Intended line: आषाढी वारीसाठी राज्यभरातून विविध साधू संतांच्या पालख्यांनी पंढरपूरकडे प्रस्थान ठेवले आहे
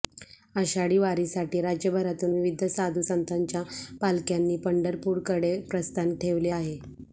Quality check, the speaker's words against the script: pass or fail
pass